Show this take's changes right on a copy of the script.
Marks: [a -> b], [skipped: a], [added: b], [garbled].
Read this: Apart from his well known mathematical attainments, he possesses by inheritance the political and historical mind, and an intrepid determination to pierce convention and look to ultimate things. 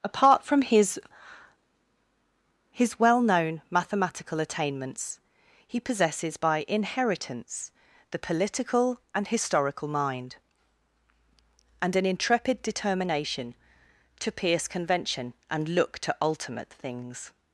Apart from his [added: his] well known mathematical attainments, he possesses by inheritance the political and historical mind, and an intrepid determination to pierce convention and look to ultimate things.